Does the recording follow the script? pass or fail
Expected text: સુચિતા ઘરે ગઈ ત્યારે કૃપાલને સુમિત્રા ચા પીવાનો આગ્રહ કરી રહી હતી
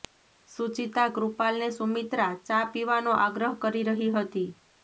fail